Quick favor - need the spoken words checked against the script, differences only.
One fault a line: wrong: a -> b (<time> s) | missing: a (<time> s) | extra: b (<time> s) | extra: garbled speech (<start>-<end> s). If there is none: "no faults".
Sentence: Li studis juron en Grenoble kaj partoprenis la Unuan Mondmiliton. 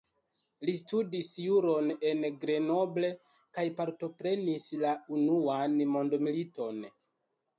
no faults